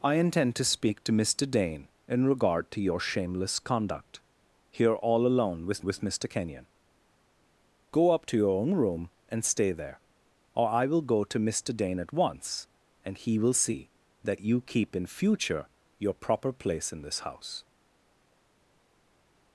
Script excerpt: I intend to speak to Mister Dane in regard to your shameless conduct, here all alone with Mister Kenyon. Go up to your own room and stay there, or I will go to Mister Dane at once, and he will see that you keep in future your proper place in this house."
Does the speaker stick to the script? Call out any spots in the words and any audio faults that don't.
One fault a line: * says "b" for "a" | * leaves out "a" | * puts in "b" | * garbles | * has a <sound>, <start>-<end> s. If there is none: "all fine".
* puts in "with"